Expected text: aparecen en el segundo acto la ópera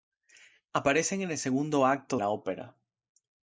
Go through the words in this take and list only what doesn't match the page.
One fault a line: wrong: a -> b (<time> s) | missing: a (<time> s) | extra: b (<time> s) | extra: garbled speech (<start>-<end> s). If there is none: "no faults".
no faults